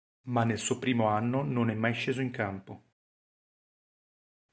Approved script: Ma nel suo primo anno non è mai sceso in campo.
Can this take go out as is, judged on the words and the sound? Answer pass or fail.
pass